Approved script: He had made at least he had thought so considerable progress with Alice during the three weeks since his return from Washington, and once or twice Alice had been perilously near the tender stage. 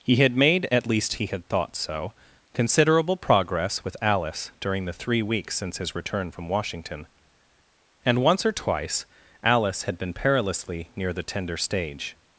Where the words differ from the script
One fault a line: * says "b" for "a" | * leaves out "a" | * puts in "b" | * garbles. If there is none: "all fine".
all fine